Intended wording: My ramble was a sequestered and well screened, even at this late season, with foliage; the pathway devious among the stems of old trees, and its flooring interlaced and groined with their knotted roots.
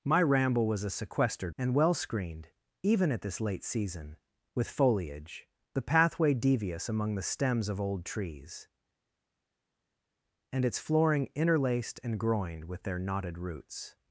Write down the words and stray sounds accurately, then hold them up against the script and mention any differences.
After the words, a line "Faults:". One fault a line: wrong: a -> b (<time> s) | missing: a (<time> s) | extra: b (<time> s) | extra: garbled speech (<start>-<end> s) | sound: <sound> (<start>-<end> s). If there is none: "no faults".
My ramble was a sequestered and well screened, even at this late season, with foliage; the pathway devious among the stems of old trees, and its flooring interlaced and groined with their knotted roots.
Faults:
no faults